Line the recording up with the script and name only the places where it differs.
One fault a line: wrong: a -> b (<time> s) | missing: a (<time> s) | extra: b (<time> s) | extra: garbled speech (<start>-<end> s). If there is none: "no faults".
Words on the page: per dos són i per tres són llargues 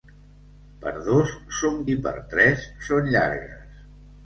no faults